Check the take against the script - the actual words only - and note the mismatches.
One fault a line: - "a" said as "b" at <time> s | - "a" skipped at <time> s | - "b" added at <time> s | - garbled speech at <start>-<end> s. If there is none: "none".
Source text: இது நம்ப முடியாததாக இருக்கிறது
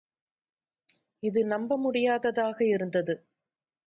- "இருக்கிறது" said as "இருந்தது" at 2.6 s